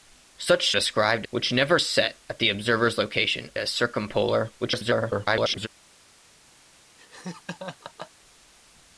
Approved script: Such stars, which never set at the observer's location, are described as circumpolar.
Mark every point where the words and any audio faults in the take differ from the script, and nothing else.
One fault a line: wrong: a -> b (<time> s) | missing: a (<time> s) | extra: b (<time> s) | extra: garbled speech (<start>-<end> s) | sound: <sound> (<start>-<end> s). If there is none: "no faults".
wrong: stars -> described (0.7 s)
missing: are described (3.5 s)
extra: garbled speech (4.6-5.7 s)
sound: laugh (7.0-8.1 s)